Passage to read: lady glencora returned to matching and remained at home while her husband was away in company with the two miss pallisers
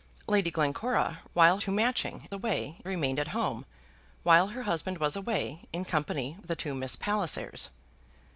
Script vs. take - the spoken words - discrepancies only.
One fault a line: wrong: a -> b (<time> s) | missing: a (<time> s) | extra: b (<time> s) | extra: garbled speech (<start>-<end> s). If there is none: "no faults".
wrong: returned -> while (1.3 s)
wrong: and -> away (2.3 s)
missing: with (6.3 s)